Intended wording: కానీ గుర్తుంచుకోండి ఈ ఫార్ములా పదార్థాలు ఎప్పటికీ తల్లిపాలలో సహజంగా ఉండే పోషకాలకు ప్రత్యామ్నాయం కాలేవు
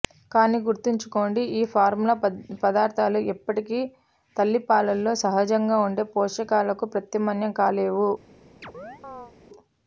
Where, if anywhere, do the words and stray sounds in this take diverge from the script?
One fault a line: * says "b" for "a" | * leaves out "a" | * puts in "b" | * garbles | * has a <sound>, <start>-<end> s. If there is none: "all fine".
* has a chirp, 8.6-9.3 s